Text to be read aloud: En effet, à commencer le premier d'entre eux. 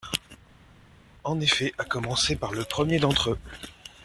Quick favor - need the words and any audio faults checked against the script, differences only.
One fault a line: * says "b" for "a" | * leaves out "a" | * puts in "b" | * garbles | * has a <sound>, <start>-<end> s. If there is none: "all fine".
* puts in "par"